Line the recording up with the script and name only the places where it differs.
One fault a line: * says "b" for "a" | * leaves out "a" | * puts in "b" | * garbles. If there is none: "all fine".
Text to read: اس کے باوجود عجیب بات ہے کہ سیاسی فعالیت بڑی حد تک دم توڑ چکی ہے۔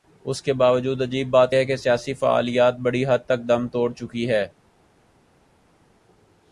all fine